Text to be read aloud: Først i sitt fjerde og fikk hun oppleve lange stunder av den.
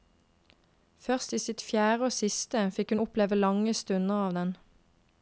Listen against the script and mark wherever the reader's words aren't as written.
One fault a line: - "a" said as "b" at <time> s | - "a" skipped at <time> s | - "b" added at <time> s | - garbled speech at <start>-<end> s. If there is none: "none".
- "siste" added at 2.1 s